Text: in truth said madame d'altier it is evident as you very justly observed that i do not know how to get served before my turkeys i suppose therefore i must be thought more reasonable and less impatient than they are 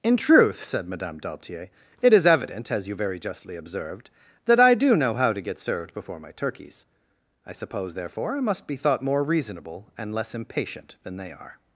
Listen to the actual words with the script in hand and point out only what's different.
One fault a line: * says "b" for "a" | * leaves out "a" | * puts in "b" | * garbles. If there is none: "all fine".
* leaves out "not"